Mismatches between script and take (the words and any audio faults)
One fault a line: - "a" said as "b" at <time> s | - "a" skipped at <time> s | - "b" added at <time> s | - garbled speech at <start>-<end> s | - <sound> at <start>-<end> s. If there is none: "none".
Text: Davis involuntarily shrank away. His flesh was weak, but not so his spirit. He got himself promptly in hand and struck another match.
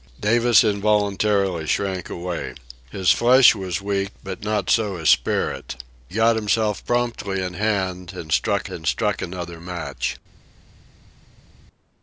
- "He" skipped at 5.8 s
- "and struck" added at 8.7 s